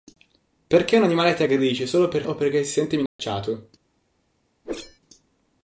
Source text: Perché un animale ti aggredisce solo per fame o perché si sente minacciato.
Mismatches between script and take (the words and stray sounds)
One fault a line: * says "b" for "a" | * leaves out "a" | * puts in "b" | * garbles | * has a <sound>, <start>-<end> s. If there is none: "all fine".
* leaves out "fame"
* has a dropout, 3.1-3.2 s
* has a whoosh, 4.6-5.0 s